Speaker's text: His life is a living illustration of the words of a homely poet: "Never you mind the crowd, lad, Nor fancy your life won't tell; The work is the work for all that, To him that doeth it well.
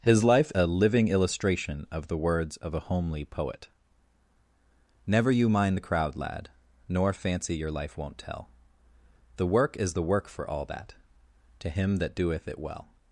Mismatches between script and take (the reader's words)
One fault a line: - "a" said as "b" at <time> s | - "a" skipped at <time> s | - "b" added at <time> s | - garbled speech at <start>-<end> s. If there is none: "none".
- "is" skipped at 0.5 s